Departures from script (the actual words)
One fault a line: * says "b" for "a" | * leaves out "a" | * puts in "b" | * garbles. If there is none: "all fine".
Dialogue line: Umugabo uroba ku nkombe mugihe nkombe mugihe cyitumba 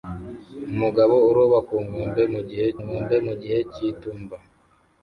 all fine